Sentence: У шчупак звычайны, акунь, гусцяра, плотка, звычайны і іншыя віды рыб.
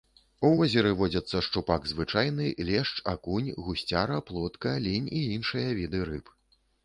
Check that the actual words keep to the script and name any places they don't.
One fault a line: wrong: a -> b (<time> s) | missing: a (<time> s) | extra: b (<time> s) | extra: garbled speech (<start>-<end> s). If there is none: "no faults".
extra: возеры водзяцца (0.6 s)
extra: лешч (2.7 s)
wrong: звычайны -> лінь (4.9 s)